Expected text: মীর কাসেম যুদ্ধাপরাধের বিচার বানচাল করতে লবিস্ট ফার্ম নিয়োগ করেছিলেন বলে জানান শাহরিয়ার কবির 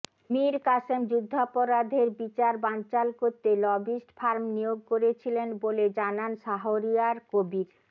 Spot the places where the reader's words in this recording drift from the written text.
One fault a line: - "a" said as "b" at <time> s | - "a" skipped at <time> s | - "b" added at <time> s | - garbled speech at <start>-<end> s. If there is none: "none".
none